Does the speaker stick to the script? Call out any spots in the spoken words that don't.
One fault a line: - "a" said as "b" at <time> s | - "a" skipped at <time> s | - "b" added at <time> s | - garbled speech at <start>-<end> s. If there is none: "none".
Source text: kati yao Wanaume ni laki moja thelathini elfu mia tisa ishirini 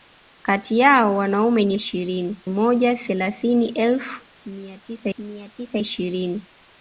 - "laki" said as "ishirini" at 1.7 s
- "mia tisa" added at 5.2 s